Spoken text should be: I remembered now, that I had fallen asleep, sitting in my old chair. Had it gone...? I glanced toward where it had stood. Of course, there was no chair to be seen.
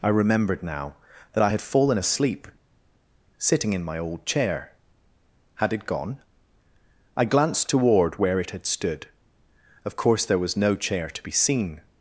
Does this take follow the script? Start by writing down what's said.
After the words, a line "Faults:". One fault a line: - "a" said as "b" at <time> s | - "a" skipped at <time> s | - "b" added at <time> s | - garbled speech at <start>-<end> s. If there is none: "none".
I remembered now, that I had fallen asleep, sitting in my old chair. Had it gone...? I glanced toward where it had stood. Of course, there was no chair to be seen.
Faults:
none